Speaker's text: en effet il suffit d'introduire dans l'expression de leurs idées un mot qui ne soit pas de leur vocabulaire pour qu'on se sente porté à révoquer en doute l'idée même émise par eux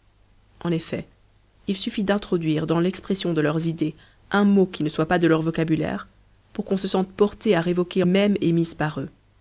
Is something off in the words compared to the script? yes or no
yes